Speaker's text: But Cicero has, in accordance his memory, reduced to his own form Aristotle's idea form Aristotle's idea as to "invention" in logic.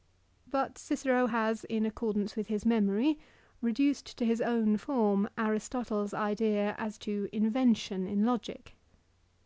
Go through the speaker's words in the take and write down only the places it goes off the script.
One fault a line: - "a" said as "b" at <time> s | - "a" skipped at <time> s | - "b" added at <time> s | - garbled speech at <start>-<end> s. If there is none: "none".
- "with" added at 2.4 s
- "form Aristotle's idea" skipped at 6.7 s